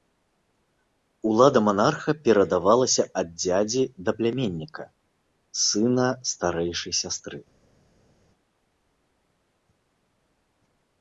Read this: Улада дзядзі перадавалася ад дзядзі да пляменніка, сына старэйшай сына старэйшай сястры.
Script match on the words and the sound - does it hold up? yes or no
no